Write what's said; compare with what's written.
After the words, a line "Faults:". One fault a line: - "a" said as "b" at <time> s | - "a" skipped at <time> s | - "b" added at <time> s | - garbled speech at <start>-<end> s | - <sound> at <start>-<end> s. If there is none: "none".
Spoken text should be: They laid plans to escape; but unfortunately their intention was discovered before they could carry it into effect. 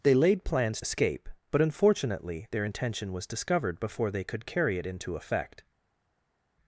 They laid plans escape; but unfortunately their intention was discovered before they could carry it into effect.
Faults:
- "to" skipped at 0.8 s